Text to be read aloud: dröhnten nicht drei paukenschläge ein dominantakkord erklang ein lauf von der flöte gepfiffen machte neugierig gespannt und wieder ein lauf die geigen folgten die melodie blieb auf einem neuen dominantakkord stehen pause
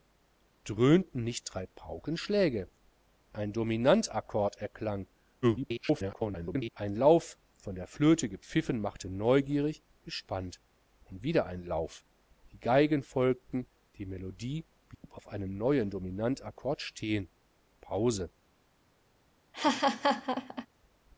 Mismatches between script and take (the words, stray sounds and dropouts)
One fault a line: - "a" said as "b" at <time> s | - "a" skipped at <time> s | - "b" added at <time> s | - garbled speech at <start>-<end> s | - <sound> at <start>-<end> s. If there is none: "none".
- garbled speech at 5.4-6.7 s
- dropout at 14.9-15.0 s
- laugh at 19.5-20.7 s